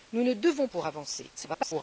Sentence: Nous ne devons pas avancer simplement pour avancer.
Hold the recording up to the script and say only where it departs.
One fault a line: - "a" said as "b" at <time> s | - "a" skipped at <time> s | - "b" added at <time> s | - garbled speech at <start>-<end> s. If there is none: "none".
- "pas avancer simplement" skipped at 0.7 s
- garbled speech at 1.4-1.8 s